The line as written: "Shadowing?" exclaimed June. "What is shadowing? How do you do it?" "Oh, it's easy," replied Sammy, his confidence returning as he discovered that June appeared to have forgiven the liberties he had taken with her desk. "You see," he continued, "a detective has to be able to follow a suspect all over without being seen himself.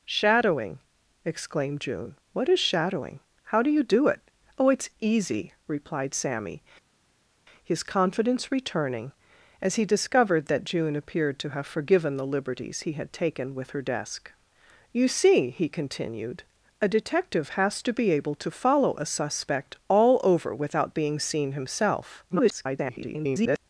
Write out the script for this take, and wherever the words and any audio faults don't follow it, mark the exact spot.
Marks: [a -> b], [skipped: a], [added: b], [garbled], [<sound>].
"Shadowing?" exclaimed June. "What is shadowing? How do you do it?" "Oh, it's easy," replied Sammy, his confidence returning as he discovered that June appeared to have forgiven the liberties he had taken with her desk. "You see," he continued, "a detective has to be able to follow a suspect all over without being seen himself. [garbled]